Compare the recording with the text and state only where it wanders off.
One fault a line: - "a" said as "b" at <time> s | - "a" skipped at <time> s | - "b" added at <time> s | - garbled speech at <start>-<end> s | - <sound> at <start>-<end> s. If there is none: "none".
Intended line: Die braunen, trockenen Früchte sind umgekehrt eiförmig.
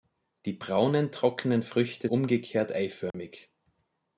- "sind" skipped at 2.1 s
- dropout at 3.1-3.1 s